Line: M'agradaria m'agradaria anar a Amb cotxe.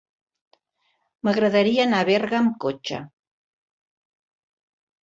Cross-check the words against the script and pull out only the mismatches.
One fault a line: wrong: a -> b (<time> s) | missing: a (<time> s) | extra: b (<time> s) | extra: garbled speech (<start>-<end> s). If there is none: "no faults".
missing: m'agradaria (1.9 s)
extra: Berga (2.1 s)